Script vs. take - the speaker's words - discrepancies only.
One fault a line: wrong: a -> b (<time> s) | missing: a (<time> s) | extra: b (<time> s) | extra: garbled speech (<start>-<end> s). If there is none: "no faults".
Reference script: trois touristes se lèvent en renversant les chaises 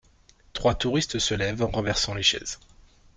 no faults